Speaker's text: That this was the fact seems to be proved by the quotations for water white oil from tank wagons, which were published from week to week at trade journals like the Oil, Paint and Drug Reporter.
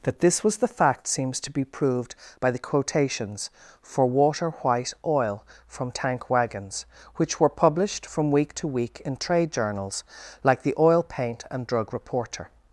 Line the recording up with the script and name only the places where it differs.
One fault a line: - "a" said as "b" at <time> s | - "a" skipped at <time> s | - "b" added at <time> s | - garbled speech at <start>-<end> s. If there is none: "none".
- "at" said as "in" at 9.0 s